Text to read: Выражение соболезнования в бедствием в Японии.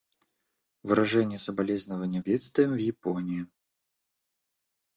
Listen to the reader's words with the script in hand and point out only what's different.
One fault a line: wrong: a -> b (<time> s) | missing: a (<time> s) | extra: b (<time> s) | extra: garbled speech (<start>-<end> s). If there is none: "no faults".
no faults